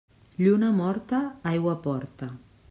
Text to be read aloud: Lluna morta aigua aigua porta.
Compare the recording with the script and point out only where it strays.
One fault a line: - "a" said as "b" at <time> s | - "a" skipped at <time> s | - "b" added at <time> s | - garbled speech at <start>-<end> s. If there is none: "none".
- "aigua" skipped at 1.8 s